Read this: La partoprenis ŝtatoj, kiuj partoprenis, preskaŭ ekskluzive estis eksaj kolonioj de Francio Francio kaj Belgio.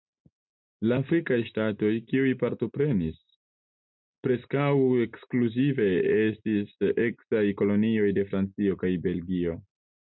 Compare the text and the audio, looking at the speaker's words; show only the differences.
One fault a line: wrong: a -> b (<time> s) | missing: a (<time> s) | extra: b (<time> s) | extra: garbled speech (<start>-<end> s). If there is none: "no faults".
wrong: partoprenis -> afrikaj (1.0 s)
missing: Francio (8.8 s)